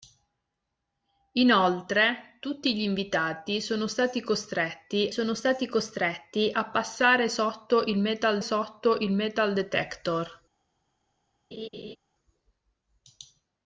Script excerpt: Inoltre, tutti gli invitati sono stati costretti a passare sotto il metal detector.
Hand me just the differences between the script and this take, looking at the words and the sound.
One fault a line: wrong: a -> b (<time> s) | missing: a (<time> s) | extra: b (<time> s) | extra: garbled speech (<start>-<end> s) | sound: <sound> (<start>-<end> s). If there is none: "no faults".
extra: sono stati costretti (5.1 s)
extra: sotto il metal (8.4 s)
sound: laugh (11.5-12.0 s)